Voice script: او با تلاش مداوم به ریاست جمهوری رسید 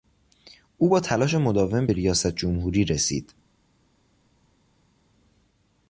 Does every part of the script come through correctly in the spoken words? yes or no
yes